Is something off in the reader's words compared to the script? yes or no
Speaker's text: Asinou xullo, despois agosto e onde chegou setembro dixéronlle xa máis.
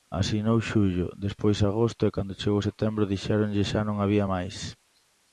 yes